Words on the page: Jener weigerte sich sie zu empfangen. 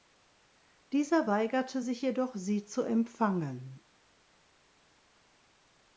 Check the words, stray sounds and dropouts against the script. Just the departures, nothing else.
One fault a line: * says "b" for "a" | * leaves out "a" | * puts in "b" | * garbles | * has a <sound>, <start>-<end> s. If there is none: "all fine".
* says "Dieser" for "Jener"
* puts in "jedoch"